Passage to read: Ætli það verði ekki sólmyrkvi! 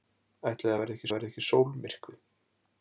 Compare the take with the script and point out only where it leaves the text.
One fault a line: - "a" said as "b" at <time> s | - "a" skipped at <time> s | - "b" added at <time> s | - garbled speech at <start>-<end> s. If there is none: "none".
- "verði ekki" added at 1.1 s